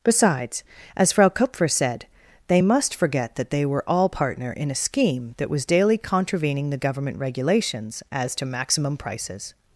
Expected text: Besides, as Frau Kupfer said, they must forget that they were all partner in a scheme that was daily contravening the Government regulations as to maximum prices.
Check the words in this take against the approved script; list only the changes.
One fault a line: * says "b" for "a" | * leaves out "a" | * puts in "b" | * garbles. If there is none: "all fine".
all fine